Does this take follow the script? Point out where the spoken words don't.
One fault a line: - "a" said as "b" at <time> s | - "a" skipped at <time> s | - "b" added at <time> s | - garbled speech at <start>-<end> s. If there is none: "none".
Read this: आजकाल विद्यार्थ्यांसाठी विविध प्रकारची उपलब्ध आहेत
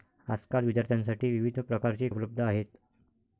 none